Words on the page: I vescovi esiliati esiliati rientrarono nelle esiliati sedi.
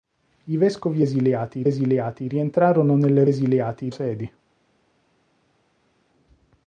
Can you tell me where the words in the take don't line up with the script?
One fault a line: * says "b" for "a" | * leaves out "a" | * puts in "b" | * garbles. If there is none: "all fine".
all fine